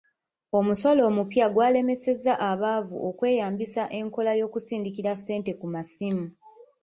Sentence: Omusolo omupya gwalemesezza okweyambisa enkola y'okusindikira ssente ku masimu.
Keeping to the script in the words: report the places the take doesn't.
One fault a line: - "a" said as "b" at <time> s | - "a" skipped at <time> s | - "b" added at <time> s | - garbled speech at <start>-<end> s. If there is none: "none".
- "abaavu" added at 2.5 s